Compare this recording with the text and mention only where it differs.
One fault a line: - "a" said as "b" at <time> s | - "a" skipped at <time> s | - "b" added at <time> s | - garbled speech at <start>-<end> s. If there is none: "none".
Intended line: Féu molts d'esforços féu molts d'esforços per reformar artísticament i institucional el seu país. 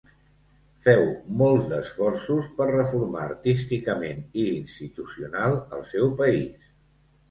- "féu molts d'esforços" skipped at 2.5 s